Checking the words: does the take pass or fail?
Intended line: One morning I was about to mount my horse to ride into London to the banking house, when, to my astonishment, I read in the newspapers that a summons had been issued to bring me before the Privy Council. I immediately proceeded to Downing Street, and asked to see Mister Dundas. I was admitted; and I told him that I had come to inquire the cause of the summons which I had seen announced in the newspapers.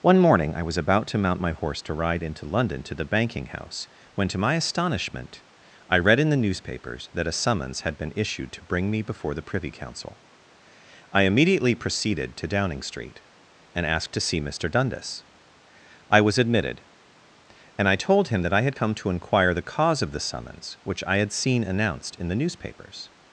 pass